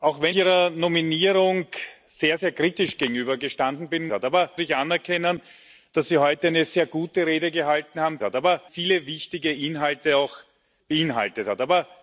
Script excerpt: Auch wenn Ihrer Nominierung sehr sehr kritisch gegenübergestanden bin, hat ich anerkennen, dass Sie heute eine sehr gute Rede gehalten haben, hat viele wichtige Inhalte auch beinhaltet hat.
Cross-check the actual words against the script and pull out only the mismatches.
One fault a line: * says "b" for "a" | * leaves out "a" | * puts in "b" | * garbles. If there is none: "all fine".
all fine